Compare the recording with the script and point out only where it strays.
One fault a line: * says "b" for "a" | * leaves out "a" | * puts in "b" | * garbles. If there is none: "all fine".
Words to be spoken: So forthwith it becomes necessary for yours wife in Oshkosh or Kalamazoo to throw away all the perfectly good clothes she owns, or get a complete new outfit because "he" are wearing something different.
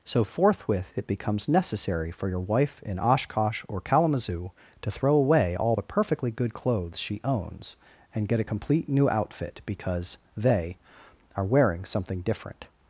* says "your" for "yours"
* says "and" for "or"
* says "they" for "he"